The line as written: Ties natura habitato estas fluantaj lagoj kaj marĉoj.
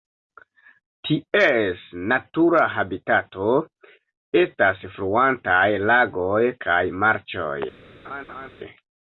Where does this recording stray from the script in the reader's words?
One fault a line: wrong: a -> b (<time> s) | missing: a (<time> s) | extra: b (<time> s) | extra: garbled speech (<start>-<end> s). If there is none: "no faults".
no faults